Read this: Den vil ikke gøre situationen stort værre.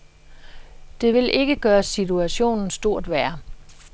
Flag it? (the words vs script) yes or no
yes